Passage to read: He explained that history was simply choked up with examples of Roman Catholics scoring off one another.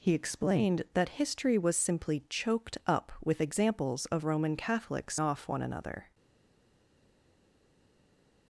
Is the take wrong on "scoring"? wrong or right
wrong